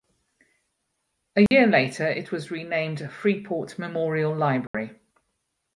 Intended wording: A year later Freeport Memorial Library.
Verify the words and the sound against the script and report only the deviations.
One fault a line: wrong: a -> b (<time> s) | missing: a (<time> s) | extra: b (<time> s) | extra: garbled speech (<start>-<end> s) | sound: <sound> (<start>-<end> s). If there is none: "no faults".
sound: dropout (1.5-1.5 s)
extra: it was renamed (2.1 s)
sound: dropout (4.7-4.7 s)